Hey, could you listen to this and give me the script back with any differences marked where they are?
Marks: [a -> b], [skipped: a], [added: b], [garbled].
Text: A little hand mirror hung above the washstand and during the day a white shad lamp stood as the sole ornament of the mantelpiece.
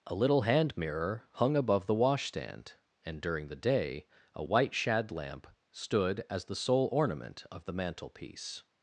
A little hand mirror hung above the washstand and during the day a white shad lamp stood as the sole ornament of the mantelpiece.